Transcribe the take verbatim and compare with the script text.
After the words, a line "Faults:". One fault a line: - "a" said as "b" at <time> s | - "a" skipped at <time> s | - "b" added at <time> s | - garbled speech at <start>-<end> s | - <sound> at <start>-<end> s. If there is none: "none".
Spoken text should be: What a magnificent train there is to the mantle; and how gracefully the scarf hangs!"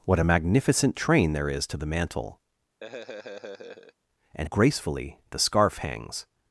What a magnificent train there is to the mantle; and gracefully the scarf hangs!"
Faults:
- laugh at 2.8-3.9 s
- "how" skipped at 4.5 s